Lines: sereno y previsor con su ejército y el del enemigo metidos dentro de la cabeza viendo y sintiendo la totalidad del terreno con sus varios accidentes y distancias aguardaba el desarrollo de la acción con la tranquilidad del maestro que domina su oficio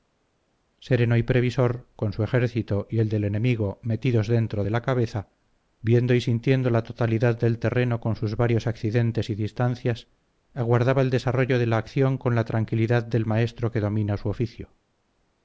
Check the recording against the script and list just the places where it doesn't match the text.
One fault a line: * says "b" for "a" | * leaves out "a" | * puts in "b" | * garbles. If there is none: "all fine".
all fine